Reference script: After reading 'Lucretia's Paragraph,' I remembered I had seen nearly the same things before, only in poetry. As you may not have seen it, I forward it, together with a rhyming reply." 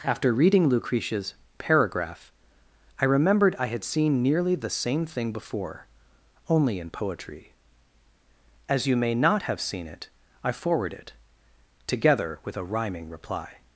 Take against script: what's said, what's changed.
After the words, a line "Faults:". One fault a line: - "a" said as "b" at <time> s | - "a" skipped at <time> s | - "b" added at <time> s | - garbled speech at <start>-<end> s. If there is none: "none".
After reading 'Lucretia's Paragraph,' I remembered I had seen nearly the same thing before, only in poetry. As you may not have seen it, I forward it, together with a rhyming reply."
Faults:
- "things" said as "thing" at 5.0 s